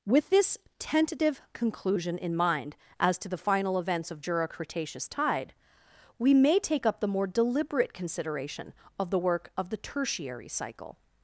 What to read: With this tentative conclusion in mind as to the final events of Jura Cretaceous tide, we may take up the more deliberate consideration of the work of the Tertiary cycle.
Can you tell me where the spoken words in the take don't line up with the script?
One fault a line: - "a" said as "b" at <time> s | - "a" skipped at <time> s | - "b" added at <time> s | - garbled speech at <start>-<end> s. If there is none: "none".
none